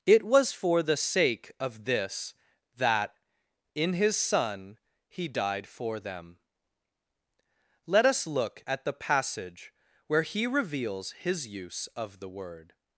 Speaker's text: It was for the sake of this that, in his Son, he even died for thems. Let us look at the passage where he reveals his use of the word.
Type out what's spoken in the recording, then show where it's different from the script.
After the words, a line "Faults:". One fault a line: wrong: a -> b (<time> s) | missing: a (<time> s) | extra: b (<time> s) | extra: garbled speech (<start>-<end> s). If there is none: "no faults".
It was for the sake of this that, in his Son, he died for them. Let us look at the passage where he reveals his use of the word.
Faults:
missing: even (5.3 s)
wrong: thems -> them (6.0 s)